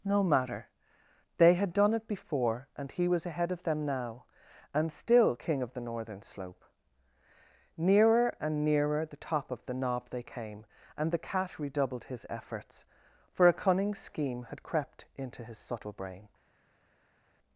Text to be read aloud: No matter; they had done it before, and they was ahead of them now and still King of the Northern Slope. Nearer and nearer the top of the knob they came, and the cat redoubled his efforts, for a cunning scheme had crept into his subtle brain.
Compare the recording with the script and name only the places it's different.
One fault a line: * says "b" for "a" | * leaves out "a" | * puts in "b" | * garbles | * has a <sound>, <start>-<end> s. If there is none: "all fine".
* says "he" for "they"